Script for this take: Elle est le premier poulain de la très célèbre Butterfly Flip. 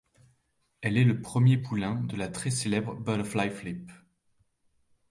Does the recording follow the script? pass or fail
pass